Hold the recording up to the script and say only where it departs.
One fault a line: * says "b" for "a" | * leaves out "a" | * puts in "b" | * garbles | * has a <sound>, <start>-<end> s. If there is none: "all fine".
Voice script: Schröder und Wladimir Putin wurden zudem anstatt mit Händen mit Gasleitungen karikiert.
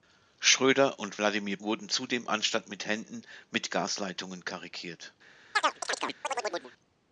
* leaves out "Putin"
* has a chirp, 5.5-6.7 s